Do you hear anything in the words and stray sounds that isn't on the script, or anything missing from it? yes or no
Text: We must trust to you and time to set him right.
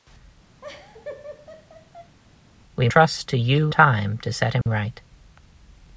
yes